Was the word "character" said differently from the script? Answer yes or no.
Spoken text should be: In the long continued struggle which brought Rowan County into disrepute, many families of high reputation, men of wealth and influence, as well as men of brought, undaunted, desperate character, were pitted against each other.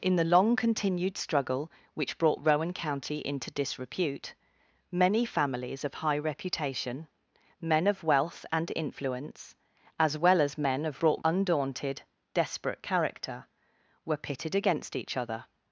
no